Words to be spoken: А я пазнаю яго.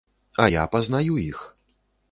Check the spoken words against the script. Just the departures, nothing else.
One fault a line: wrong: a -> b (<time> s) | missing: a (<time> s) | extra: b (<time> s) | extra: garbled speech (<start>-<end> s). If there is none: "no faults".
wrong: яго -> іх (1.2 s)